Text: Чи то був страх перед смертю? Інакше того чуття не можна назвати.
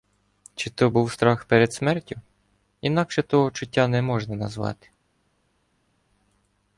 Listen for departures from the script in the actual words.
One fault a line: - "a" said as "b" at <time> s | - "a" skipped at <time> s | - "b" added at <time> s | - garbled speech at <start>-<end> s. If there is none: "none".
none